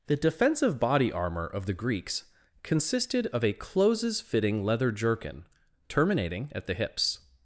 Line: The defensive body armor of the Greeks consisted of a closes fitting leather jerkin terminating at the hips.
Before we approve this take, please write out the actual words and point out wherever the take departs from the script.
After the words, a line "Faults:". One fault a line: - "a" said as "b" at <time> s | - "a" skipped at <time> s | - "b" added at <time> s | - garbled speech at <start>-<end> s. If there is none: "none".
The defensive body armor of the Greeks consisted of a closes fitting leather jerkin terminating at the hips.
Faults:
none